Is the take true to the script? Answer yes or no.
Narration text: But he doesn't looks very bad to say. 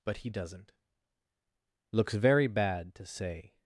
yes